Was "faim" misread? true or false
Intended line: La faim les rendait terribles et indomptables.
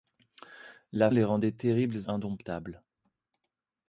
true